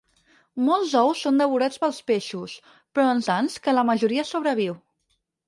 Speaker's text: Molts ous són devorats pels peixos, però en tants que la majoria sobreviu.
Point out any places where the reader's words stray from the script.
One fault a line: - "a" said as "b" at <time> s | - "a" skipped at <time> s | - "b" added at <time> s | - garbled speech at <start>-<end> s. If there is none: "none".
none